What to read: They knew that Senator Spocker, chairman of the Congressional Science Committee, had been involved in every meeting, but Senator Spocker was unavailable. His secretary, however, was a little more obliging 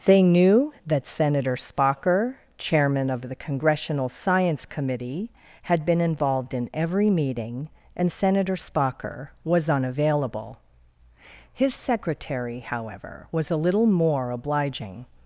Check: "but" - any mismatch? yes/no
yes